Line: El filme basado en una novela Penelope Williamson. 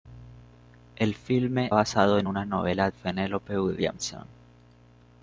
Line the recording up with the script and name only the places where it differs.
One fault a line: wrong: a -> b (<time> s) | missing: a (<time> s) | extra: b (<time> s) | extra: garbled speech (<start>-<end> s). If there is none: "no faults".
no faults